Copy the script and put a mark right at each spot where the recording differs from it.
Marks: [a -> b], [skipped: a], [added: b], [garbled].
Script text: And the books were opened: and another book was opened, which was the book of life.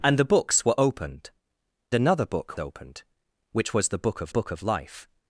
And the books were opened: [skipped: and] another book [skipped: was] opened, which was the book of [added: book of] life.